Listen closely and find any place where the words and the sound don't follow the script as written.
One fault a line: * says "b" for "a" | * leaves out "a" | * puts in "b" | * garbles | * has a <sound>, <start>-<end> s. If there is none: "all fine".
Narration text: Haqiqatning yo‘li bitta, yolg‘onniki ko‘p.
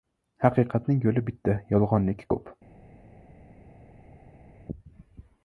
all fine